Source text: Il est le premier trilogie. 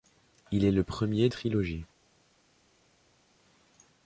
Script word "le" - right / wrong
right